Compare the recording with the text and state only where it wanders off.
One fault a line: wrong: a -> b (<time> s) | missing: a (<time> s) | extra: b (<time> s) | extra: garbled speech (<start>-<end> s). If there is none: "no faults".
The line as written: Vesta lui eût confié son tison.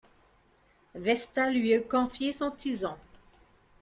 no faults